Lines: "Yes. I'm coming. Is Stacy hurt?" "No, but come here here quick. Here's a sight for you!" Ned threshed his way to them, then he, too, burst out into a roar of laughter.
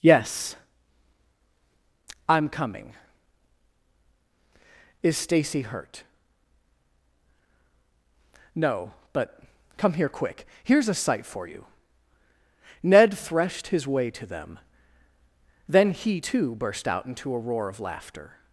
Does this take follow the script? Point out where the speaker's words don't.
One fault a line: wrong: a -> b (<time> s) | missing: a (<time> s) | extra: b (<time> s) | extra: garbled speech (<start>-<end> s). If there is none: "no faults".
missing: here (10.1 s)